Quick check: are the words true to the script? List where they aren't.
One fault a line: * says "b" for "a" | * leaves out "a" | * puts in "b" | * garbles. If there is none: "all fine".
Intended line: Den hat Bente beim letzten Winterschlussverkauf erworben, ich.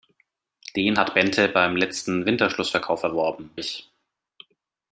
all fine